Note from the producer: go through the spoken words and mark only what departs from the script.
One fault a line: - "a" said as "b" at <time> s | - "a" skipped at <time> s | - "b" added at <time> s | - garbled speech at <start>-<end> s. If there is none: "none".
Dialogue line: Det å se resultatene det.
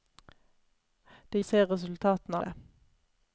none